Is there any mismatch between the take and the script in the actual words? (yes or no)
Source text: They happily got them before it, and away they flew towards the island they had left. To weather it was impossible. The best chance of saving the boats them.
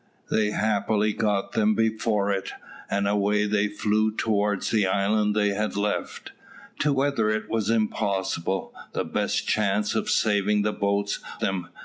no